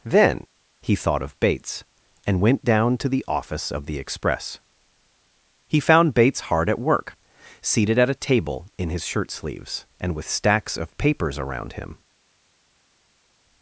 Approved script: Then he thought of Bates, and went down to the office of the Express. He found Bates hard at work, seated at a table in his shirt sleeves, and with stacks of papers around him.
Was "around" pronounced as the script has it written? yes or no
yes